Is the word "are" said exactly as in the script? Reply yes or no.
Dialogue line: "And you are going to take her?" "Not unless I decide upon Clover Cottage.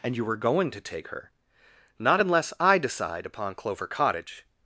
no